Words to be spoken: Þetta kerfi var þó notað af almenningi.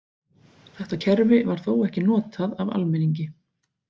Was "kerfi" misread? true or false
false